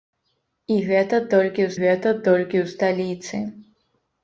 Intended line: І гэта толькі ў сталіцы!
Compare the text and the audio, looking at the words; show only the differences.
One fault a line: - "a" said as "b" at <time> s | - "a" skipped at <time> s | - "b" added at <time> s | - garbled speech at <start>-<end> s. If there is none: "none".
- "гэта толькі ў" added at 1.8 s